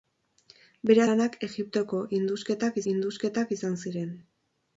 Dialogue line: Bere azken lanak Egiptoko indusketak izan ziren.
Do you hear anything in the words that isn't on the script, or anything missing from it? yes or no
yes